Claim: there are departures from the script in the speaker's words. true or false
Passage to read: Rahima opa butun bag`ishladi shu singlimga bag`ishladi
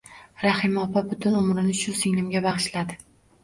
true